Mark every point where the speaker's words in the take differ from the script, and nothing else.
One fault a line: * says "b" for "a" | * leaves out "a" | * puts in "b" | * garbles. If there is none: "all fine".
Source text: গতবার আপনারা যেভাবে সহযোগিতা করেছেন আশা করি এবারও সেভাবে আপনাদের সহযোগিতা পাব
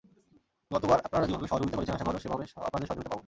* leaves out "করি"